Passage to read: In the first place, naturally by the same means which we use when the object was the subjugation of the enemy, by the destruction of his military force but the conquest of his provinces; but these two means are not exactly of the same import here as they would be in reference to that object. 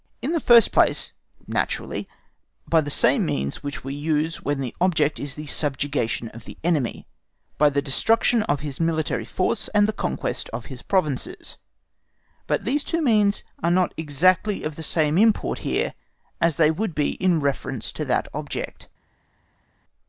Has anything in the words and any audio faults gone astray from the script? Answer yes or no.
yes